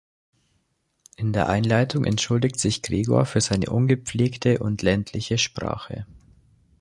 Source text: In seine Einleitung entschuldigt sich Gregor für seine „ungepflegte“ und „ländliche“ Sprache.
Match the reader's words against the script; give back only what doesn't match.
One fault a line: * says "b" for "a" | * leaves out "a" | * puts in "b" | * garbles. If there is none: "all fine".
* says "der" for "seine"